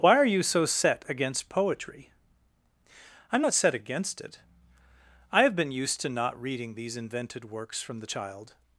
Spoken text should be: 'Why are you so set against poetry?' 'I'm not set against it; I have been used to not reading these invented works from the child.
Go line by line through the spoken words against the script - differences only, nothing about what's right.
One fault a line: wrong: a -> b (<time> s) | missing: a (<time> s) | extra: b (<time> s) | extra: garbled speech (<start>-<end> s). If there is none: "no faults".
no faults